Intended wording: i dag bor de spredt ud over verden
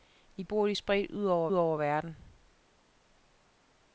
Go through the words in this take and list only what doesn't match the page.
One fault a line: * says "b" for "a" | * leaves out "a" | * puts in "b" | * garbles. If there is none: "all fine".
* leaves out "dag"
* puts in "over"